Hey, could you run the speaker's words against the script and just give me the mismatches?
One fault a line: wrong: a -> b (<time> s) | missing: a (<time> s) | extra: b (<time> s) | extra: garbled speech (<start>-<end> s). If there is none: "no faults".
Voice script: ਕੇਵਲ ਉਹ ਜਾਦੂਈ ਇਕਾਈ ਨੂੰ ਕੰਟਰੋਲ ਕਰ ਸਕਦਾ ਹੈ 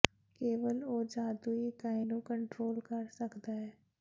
no faults